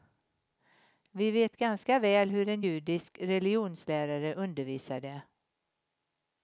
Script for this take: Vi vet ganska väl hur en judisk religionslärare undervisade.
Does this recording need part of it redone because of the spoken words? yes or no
no